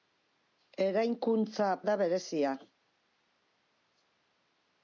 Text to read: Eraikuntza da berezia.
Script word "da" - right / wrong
right